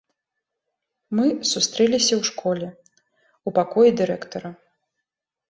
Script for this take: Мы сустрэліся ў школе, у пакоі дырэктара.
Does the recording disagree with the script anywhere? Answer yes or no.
no